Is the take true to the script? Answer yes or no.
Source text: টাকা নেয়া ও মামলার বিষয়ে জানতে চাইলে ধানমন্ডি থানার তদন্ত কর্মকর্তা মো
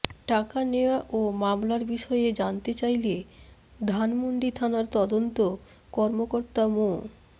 yes